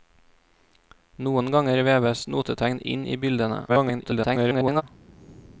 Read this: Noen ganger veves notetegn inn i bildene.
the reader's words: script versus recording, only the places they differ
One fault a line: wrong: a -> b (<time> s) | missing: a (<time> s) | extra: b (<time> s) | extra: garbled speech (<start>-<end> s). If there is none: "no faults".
extra: garbled speech (3.7-4.8 s)